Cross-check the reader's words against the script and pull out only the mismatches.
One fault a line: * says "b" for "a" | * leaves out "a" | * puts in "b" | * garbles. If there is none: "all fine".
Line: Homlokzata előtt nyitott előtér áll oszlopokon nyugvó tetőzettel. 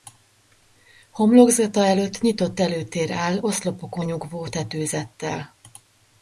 all fine